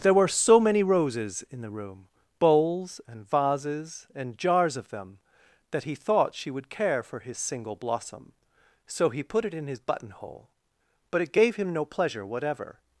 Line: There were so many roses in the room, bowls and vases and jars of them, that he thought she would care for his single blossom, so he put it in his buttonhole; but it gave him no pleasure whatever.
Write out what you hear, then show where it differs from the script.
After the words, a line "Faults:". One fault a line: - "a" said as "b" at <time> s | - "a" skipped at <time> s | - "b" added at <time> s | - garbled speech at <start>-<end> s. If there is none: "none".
There were so many roses in the room, bowls and vases and jars of them, that he thought she would care for his single blossom, so he put it in his buttonhole; but it gave him no pleasure whatever.
Faults:
none